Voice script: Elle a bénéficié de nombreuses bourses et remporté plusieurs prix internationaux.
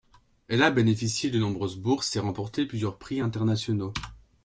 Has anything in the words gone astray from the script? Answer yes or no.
no